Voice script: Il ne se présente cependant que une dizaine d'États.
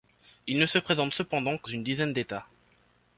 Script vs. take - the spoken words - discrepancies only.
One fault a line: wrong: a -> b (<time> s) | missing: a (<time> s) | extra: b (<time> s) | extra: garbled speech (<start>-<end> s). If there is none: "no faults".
no faults